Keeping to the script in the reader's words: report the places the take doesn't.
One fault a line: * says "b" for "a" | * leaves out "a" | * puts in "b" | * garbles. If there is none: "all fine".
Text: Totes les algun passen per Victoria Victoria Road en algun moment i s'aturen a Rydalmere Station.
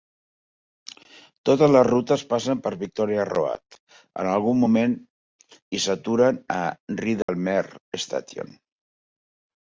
* says "rutes" for "algun"
* leaves out "Victoria"